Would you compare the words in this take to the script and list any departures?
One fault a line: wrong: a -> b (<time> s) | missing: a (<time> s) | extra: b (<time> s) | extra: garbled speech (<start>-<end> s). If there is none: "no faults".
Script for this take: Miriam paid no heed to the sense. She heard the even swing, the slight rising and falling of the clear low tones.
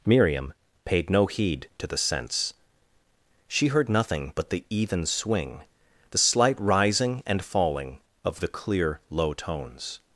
extra: nothing but (3.9 s)